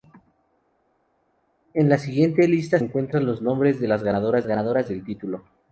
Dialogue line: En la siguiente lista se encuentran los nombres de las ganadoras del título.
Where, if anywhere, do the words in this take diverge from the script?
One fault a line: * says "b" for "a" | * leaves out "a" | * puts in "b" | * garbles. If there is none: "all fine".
* leaves out "se"
* puts in "ganadoras"